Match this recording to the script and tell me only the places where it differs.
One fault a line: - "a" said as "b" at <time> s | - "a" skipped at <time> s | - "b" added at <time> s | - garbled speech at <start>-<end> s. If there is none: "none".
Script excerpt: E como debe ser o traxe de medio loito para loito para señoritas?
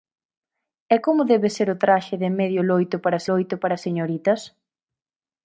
none